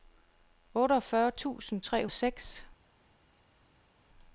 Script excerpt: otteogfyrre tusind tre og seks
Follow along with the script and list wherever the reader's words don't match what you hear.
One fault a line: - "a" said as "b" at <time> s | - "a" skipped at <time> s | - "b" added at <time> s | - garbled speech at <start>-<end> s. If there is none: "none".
none